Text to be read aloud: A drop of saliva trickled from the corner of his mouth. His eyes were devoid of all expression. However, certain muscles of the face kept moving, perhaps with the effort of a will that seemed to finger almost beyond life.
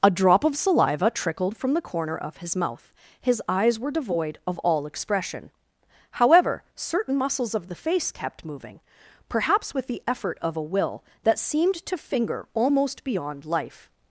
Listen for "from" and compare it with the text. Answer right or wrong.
right